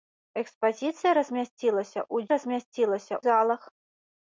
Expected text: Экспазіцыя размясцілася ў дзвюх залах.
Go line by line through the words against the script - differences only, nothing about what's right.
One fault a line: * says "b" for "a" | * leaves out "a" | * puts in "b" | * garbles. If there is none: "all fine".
* says "размясцілася" for "дзвюх"